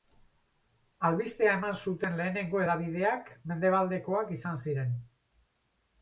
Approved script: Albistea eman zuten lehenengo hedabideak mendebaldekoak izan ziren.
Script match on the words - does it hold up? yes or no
yes